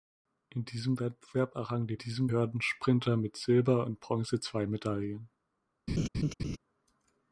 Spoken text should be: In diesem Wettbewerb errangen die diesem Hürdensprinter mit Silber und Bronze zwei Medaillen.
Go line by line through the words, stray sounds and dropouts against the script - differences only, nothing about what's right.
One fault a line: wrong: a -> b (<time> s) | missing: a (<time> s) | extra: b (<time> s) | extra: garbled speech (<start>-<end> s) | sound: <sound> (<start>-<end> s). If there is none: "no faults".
sound: laugh (5.9-6.6 s)